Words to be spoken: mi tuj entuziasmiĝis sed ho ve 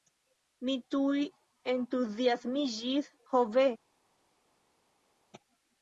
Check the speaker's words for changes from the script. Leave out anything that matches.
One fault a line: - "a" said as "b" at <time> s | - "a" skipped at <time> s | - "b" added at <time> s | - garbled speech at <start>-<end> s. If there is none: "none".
- "sed" skipped at 3.1 s